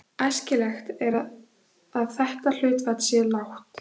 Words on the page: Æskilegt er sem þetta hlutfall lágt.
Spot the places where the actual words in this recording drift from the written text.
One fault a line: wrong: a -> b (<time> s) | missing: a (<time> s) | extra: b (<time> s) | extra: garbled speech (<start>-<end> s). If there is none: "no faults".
wrong: sem -> að (1.1 s)
extra: sé (3.1 s)